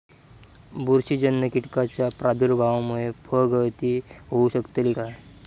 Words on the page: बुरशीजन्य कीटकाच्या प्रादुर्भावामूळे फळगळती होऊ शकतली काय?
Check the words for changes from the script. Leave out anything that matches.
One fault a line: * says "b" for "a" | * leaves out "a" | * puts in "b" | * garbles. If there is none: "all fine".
all fine